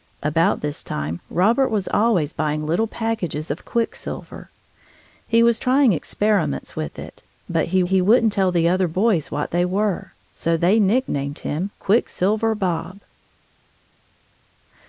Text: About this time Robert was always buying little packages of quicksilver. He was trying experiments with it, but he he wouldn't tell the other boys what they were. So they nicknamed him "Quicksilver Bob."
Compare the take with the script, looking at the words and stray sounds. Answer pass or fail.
pass